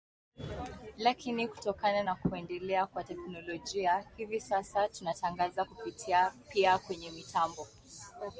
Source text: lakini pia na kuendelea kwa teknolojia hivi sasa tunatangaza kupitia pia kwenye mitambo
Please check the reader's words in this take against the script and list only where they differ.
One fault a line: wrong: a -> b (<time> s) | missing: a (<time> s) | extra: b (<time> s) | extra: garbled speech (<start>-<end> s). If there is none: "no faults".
wrong: pia -> kutokana (1.5 s)